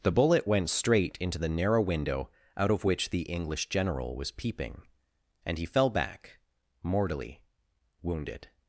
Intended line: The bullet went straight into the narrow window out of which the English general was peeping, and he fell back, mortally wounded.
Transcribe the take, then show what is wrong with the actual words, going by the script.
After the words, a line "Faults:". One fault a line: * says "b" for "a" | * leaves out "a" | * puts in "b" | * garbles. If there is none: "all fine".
The bullet went straight into the narrow window out of which the English general was peeping, and he fell back, mortally wounded.
Faults:
all fine